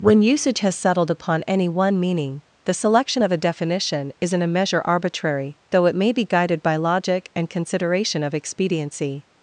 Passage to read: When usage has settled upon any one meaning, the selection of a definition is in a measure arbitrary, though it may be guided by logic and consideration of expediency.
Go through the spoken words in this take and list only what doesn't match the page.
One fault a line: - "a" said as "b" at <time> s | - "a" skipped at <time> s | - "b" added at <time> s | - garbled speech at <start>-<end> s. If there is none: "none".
none